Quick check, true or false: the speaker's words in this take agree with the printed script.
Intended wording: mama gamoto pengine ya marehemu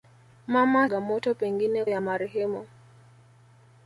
true